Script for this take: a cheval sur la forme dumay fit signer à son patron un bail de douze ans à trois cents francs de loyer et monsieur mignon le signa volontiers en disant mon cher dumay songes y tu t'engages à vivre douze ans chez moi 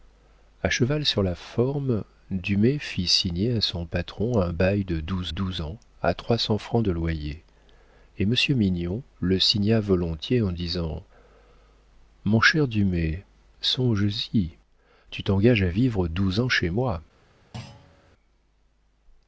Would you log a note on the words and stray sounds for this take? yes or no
yes